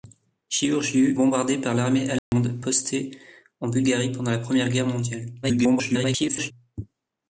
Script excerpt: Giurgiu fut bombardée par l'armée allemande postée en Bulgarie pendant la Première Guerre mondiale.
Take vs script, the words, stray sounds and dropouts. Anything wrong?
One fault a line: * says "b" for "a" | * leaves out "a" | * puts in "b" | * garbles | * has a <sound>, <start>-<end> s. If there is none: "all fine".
* leaves out "fut"
* has a dropout, 2.2-2.3 s
* garbles